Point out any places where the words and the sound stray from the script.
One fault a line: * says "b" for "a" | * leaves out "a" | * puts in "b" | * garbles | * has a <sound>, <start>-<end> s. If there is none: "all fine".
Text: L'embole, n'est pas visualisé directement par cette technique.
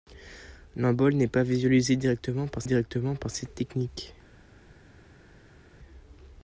* puts in "directement par"